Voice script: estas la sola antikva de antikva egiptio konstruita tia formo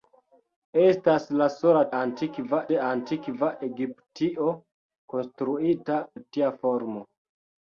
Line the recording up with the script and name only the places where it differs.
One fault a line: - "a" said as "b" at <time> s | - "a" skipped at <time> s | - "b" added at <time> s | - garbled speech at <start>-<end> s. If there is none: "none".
none